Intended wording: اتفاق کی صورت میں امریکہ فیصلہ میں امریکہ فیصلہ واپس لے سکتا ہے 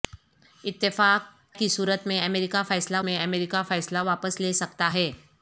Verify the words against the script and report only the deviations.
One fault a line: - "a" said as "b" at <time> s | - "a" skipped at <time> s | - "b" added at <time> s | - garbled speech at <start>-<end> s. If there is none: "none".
none